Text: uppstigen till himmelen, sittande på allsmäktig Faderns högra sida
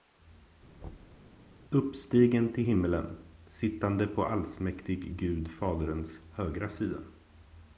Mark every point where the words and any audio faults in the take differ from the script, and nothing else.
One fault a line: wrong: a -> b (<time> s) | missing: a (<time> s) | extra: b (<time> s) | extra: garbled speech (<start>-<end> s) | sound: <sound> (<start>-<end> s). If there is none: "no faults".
sound: thud (0.8-1.3 s)
extra: Gud (5.2 s)